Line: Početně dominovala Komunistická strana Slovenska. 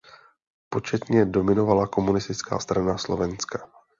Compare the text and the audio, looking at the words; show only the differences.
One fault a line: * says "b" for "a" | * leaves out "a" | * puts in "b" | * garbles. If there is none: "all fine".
all fine